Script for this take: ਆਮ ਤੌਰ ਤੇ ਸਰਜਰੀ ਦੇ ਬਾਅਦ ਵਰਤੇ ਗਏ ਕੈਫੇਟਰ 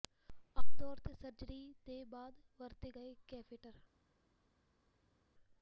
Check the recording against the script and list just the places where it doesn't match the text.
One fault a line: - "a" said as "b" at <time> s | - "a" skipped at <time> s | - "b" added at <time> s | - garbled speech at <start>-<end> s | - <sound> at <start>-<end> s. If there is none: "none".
none